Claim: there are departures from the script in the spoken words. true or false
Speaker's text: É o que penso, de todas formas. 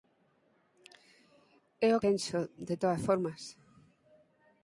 true